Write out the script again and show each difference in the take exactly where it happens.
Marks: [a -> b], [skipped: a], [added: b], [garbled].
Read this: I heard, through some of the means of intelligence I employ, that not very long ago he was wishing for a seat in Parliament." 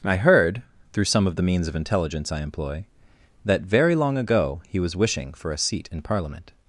I heard, through some of the means of intelligence I employ, that [skipped: not] very long ago he was wishing for a seat in Parliament."